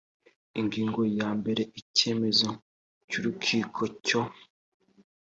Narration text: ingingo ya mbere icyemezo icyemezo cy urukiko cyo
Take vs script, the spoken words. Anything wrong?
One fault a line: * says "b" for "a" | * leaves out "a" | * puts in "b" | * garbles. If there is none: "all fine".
* leaves out "icyemezo"